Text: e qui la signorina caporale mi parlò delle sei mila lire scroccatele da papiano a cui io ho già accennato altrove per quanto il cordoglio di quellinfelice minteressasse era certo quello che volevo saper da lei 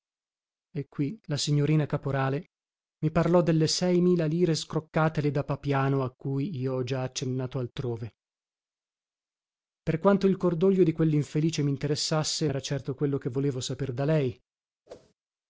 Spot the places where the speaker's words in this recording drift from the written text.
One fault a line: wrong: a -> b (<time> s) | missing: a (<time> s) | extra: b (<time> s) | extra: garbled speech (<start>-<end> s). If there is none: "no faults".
no faults